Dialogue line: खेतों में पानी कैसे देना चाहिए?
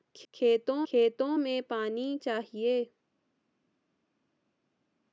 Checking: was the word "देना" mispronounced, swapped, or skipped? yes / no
yes